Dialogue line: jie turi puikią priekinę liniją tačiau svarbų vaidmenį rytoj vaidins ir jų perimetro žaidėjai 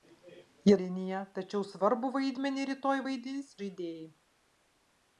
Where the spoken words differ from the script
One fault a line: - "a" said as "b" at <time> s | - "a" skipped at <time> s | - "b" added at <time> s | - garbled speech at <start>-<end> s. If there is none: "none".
- "turi puikią priekinę" skipped at 0.8 s
- "ir jų perimetro" skipped at 3.6 s